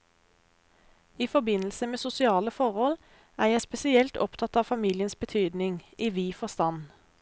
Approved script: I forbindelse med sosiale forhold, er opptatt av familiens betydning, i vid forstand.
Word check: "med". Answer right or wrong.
right